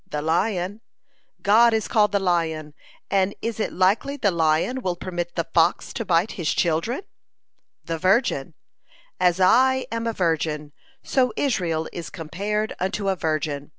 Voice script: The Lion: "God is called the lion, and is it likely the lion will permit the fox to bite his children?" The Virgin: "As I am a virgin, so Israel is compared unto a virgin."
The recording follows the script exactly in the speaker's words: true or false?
true